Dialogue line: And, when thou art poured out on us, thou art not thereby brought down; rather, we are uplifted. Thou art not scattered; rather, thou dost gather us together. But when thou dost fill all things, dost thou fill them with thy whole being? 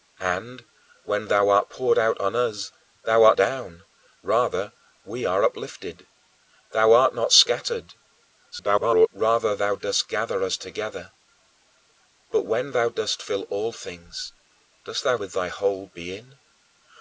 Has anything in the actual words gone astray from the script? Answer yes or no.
yes